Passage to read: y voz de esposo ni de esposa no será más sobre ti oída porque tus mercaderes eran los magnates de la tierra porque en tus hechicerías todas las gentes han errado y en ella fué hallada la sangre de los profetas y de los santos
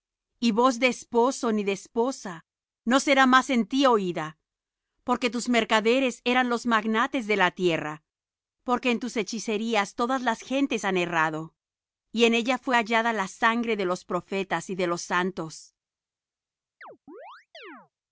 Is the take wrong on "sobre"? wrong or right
wrong